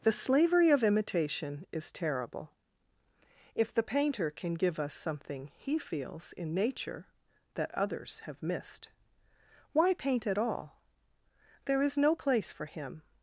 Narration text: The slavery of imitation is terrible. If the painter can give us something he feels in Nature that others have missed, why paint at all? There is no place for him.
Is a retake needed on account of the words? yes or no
no